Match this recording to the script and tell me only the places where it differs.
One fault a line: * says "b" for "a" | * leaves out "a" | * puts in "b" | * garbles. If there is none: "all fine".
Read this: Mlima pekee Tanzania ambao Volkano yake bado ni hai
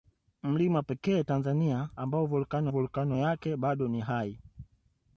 * puts in "Volkano"